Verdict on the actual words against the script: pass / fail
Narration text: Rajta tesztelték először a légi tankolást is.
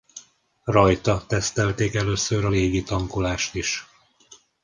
pass